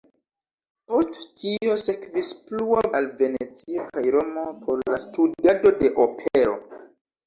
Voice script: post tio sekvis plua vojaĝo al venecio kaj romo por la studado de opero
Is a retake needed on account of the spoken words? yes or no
yes